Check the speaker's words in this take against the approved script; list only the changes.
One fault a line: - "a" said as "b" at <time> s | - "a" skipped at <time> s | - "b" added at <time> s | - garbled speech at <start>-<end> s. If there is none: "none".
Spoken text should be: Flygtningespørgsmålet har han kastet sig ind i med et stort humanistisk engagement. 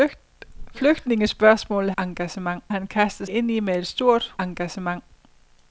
- "har" said as "engagement" at 2.0 s
- "sig" skipped at 3.3 s
- "humanistisk" skipped at 4.3 s